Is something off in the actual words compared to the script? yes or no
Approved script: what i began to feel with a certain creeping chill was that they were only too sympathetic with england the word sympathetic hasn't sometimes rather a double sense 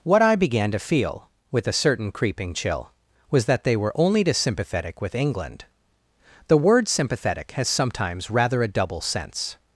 yes